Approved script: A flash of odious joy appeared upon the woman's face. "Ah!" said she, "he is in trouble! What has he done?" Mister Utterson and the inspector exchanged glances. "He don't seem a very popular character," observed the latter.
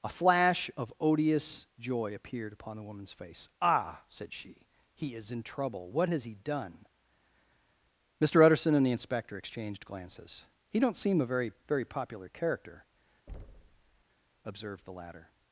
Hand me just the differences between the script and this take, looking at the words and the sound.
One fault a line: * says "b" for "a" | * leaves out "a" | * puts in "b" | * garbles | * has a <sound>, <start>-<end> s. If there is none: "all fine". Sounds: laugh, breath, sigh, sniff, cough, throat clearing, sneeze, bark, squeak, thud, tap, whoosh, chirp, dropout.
* puts in "very"
* has a thud, 13.3-14.0 s